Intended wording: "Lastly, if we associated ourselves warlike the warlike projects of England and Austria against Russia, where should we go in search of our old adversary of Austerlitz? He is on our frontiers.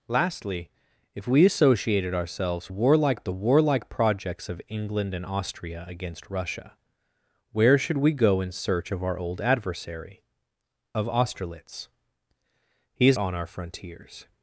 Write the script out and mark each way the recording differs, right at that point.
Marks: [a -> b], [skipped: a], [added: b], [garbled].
"Lastly, if we associated ourselves warlike the warlike projects of England and Austria against Russia, where should we go in search of our old adversary of Austerlitz? He is on our frontiers.